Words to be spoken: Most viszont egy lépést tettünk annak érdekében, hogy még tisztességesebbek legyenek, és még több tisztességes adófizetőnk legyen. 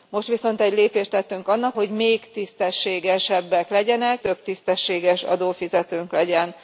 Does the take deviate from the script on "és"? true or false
true